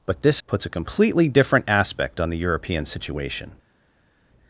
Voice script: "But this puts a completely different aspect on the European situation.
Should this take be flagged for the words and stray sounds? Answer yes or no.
no